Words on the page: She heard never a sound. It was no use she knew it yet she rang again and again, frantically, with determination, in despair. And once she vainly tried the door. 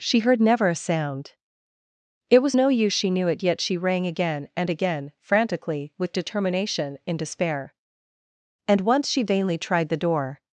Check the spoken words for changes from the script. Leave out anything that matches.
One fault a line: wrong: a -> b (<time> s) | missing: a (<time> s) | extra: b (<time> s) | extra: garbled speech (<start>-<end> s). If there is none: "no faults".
no faults